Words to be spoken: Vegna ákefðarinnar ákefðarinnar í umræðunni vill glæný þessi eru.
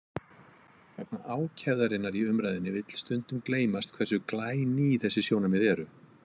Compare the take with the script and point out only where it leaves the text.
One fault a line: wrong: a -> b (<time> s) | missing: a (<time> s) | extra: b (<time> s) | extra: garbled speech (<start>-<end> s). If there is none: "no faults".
missing: ákefðarinnar (2.2 s)
extra: stundum gleymast hversu (3.0 s)
extra: sjónarmið (5.3 s)